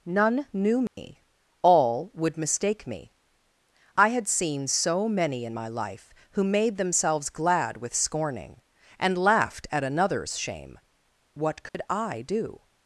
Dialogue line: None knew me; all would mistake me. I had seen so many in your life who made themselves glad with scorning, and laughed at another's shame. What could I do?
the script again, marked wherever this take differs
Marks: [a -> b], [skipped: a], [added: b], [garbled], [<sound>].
None knew me; [dropout] all would mistake me. I had seen so many in [your -> my] life who made themselves glad with scorning, and laughed at another's shame. What could [dropout] I do?